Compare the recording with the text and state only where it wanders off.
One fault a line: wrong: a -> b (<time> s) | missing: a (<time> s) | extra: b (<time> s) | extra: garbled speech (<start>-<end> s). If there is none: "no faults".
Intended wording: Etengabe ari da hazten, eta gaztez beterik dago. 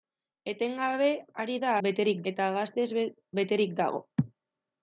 wrong: hazten -> beterik (1.9 s)